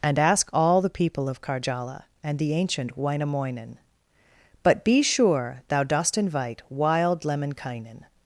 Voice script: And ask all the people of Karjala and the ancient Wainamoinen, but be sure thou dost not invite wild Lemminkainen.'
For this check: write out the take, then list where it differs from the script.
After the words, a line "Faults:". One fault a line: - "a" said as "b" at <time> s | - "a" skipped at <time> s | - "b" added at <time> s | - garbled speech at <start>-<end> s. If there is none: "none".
And ask all the people of Karjala and the ancient Wainamoinen, but be sure thou dost invite wild Lemminkainen.'
Faults:
- "not" skipped at 6.2 s